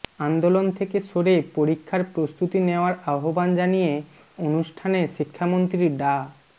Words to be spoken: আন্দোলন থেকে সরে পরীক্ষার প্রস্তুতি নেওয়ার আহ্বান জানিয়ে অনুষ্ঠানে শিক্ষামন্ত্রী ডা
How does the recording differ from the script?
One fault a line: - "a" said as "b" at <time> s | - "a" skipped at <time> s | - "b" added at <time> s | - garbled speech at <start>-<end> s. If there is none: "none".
none